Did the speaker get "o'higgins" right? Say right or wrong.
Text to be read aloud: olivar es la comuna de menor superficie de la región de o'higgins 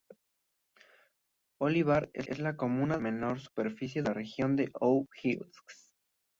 right